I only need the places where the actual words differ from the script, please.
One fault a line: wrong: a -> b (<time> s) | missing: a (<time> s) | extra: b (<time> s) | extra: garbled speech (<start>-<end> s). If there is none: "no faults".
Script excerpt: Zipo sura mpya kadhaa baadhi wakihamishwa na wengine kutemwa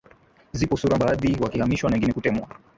missing: mpya kadhaa (1.0 s)